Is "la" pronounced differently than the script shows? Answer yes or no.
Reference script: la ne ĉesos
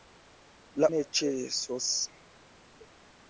no